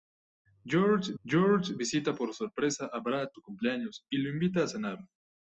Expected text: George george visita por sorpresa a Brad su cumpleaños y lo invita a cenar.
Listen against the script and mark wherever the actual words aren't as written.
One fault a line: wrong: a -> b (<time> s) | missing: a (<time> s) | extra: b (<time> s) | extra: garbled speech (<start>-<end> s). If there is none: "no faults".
no faults